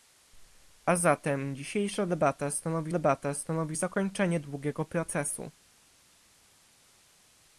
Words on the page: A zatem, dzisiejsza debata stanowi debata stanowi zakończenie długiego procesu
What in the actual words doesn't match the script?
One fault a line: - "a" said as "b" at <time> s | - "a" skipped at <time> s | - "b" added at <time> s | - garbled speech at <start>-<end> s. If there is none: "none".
none